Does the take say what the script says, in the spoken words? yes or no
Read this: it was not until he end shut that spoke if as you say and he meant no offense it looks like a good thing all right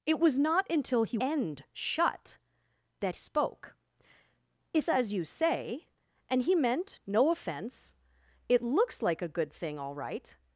yes